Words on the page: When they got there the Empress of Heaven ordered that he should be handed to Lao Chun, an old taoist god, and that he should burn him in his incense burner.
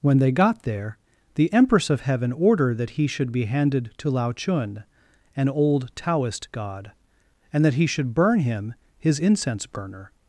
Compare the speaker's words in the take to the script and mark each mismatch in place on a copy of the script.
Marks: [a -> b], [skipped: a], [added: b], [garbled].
When they got there the Empress of Heaven ordered that he should be handed to Lao Chun, an old taoist god, and that he should burn him [skipped: in] his incense burner.